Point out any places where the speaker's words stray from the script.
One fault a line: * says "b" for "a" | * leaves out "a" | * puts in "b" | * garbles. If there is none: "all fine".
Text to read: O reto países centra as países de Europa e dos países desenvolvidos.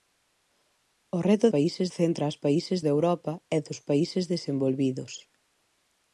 all fine